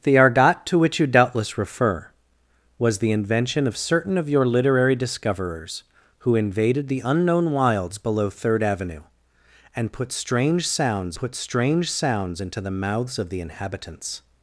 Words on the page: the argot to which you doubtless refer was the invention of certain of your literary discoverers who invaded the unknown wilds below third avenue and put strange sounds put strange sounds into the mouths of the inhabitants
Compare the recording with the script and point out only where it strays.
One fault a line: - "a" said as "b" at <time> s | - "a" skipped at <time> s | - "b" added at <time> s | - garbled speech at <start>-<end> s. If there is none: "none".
none